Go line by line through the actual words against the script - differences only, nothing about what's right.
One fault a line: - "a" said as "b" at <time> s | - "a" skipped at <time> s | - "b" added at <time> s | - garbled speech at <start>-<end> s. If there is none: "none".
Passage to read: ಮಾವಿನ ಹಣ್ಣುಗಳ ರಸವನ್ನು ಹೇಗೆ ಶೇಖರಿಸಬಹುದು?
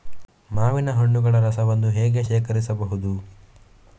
none